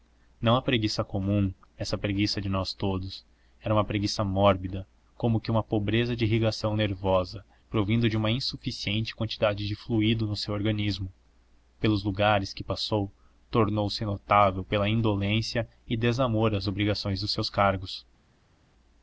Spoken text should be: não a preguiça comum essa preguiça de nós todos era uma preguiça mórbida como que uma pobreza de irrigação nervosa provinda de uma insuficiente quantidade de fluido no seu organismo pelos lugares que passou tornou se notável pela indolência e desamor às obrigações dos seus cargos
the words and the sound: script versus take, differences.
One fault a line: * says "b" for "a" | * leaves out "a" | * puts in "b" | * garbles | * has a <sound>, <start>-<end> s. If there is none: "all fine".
all fine